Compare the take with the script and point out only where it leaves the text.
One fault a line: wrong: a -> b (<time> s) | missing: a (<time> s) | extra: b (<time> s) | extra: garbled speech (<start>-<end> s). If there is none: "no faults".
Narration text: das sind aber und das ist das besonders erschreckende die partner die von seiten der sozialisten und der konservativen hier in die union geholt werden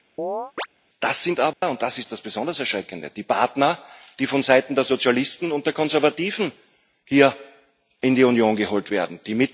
no faults